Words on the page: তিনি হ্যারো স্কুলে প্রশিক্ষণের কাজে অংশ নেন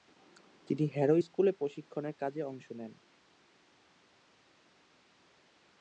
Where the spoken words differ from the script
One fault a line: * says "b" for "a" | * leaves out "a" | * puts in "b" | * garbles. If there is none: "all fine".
all fine